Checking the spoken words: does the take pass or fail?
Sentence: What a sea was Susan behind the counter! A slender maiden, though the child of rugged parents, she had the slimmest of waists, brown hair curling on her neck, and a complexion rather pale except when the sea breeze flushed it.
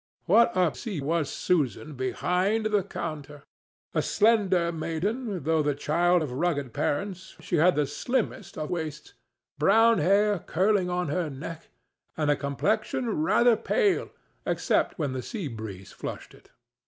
pass